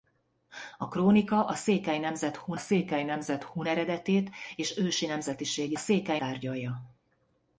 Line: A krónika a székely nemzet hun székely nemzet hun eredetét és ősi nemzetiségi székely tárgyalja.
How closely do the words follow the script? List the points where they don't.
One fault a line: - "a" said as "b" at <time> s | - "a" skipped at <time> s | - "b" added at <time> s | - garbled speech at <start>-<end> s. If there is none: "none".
none